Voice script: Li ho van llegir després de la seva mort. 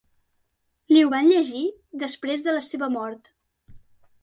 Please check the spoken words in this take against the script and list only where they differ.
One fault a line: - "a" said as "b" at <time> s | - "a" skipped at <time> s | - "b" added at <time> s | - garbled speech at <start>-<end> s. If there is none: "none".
none